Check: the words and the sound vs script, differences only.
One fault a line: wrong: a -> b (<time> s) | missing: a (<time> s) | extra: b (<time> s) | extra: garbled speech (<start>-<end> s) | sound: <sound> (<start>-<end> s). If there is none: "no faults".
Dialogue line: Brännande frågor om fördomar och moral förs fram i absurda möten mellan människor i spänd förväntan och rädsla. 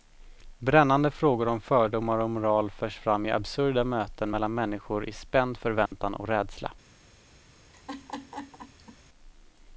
sound: dropout (5.9-5.9 s)
sound: laugh (7.7-9.0 s)